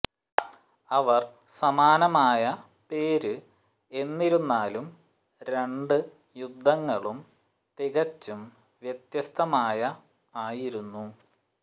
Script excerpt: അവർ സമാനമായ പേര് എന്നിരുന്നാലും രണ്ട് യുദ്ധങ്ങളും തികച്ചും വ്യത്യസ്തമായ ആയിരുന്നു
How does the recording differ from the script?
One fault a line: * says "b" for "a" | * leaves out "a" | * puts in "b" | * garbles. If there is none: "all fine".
all fine